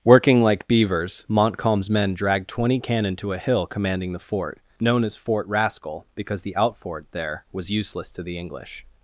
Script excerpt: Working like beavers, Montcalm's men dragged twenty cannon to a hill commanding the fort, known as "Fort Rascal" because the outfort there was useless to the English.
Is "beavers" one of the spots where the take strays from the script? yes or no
no